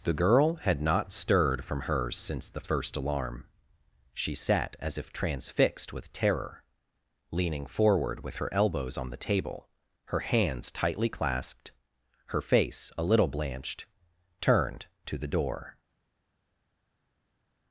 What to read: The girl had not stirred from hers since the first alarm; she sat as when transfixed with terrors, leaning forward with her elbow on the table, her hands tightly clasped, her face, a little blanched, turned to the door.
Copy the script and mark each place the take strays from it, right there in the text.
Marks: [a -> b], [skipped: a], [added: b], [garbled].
The girl had not stirred from hers since the first alarm; she sat as [when -> if] transfixed with [terrors, -> terror] leaning forward with her [elbow -> elbows] on the table, her hands tightly clasped, her face, a little blanched, turned to the door.